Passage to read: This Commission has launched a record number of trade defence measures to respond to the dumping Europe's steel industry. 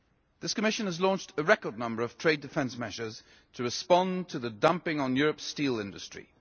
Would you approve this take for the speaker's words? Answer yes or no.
no